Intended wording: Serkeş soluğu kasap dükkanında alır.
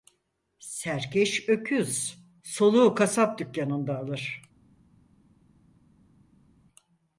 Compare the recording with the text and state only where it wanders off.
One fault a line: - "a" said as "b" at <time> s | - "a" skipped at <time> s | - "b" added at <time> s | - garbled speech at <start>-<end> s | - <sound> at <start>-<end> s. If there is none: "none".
- "öküz" added at 1.5 s